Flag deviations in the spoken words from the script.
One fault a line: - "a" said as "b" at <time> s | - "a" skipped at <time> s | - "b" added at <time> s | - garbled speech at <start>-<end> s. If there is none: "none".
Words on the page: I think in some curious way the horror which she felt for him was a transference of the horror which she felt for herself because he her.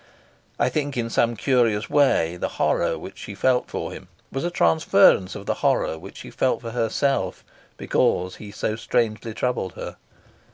- "so strangely troubled" added at 8.5 s